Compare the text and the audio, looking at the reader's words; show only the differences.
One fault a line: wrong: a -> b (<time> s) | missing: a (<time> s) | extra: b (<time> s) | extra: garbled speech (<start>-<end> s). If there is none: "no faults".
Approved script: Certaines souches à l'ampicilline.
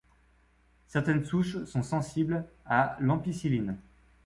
extra: sont sensibles (1.7 s)